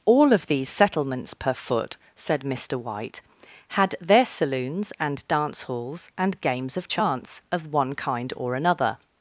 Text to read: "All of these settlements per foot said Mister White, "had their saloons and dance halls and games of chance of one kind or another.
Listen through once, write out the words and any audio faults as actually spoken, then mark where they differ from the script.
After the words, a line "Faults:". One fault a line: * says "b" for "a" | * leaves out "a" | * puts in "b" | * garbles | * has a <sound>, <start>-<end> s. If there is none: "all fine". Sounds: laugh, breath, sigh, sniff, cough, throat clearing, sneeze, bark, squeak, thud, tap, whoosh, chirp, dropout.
"All of these settlements per foot said Mister White, "had their saloons and dance halls and games of chance of one kind or another.
Faults:
all fine